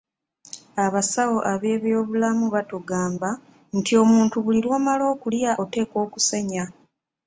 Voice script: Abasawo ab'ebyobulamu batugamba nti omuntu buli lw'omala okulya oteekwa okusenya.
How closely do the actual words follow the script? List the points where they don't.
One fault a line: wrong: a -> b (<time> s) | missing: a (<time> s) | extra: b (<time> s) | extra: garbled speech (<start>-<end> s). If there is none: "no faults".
no faults